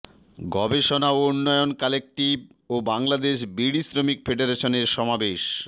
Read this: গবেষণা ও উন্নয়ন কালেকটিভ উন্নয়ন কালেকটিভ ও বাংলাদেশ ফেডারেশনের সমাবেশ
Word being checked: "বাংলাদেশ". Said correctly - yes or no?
no